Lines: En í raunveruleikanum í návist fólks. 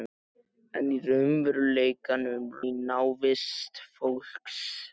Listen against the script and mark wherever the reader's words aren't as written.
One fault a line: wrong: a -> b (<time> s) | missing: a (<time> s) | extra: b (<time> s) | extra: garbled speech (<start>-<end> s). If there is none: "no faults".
no faults